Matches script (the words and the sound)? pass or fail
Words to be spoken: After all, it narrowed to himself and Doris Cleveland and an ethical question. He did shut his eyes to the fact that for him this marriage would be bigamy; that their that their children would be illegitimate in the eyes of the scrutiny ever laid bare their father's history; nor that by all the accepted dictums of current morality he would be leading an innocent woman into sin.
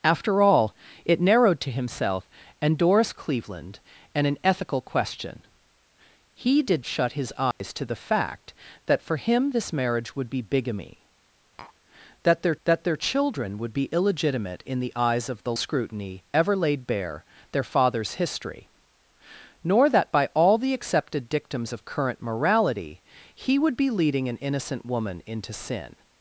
fail